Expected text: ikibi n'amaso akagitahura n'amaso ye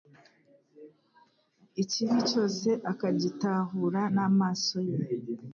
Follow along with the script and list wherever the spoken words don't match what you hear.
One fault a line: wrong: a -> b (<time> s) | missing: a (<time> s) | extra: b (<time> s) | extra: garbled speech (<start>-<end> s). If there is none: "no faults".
wrong: n'amaso -> cyose (2.3 s)